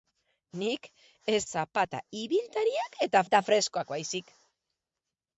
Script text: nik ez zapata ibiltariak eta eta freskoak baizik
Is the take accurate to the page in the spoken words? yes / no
yes